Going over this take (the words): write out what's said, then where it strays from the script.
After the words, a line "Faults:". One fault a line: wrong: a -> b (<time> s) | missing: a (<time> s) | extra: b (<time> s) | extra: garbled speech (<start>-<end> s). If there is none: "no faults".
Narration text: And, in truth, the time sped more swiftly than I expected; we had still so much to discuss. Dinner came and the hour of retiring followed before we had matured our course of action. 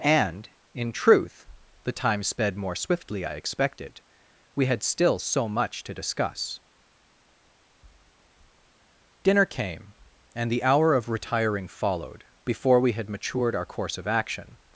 And, in truth, the time sped more swiftly I expected; we had still so much to discuss. Dinner came and the hour of retiring followed before we had matured our course of action.
Faults:
missing: than (3.2 s)